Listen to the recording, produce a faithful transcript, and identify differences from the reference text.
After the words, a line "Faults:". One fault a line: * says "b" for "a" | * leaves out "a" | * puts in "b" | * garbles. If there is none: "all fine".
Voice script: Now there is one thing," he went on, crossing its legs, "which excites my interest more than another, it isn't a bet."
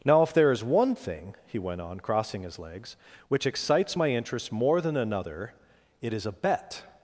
Now if there is one thing," he went on, crossing his legs, "which excites my interest more than another, it is a bet."
Faults:
* puts in "if"
* says "his" for "its"
* says "is" for "isn't"